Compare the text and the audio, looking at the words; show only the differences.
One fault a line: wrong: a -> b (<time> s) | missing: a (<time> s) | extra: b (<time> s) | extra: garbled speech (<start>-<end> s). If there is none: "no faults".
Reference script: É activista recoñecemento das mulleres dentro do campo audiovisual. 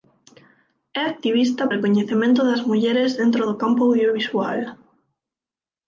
no faults